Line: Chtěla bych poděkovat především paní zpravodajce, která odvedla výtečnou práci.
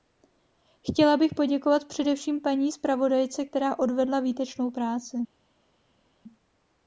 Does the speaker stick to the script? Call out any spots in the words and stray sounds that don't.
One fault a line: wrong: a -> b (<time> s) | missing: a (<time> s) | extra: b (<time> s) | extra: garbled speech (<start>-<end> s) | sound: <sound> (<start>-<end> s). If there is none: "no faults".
no faults